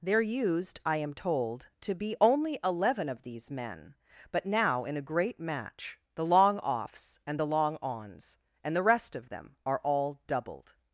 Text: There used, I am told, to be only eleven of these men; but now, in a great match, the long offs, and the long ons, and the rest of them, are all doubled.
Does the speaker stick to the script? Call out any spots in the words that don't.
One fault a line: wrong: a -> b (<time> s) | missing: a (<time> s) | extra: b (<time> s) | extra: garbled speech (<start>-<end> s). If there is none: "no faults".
no faults